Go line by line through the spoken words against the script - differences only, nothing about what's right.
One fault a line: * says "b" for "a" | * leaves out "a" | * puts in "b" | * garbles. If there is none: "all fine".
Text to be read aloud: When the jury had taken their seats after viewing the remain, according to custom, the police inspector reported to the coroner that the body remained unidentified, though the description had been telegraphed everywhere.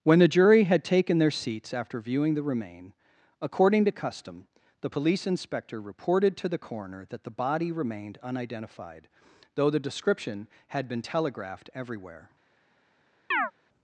all fine